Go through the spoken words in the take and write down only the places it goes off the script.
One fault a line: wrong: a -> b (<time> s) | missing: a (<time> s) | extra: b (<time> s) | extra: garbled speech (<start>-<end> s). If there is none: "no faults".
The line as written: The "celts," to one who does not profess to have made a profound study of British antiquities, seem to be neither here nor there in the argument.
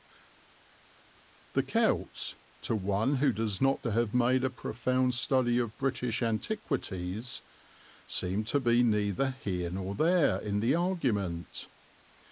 missing: profess (3.8 s)